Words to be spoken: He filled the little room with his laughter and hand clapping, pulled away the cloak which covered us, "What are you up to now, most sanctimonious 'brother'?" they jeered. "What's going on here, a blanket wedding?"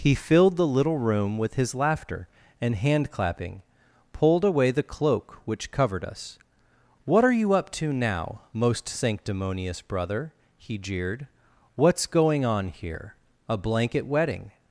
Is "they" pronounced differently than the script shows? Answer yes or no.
yes